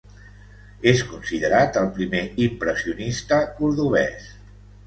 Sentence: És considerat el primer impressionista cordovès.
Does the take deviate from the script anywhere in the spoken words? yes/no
no